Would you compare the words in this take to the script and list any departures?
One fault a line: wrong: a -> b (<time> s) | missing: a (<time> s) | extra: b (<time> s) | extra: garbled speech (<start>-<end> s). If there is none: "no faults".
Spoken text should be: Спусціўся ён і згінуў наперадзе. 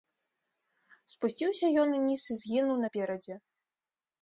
extra: уніз (2.0 s)